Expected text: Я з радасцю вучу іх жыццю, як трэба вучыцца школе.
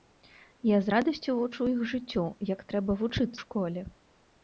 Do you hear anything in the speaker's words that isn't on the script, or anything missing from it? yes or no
no